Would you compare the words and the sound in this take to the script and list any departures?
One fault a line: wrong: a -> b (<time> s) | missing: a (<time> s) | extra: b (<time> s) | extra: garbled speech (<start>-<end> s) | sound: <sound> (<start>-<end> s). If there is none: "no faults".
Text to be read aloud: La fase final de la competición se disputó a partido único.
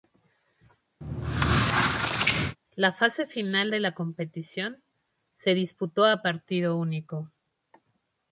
sound: squeak (1.0-2.6 s)